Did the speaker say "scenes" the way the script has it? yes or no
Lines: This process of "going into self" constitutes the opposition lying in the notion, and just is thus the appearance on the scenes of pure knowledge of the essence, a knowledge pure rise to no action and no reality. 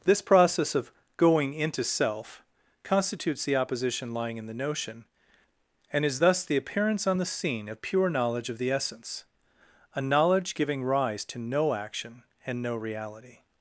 no